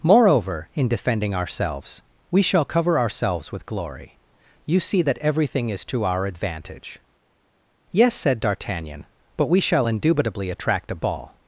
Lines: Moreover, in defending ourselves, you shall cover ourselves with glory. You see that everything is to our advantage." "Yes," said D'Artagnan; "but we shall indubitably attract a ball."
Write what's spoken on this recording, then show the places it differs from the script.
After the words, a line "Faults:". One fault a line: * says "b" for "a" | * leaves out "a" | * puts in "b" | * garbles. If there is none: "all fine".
Moreover, in defending ourselves, we shall cover ourselves with glory. You see that everything is to our advantage." "Yes," said D'Artagnan; "but we shall indubitably attract a ball."
Faults:
* says "we" for "you"